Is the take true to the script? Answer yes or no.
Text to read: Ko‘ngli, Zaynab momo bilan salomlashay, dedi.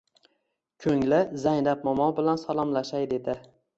yes